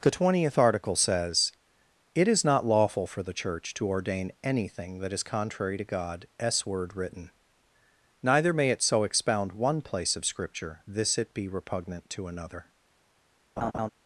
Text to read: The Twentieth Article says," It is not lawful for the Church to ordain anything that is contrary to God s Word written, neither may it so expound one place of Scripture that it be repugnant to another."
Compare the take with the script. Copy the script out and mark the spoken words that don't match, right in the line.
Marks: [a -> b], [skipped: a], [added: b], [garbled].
The Twentieth Article says," It is not lawful for the Church to ordain anything that is contrary to God s Word written, neither may it so expound one place of Scripture [that -> this] it be repugnant to another."